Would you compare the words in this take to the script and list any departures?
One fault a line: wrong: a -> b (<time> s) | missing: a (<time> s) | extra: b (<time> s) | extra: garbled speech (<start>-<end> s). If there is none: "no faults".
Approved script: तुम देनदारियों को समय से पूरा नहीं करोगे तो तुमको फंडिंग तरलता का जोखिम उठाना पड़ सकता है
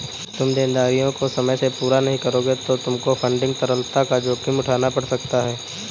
no faults